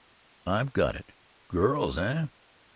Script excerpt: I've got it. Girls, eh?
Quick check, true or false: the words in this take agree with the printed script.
true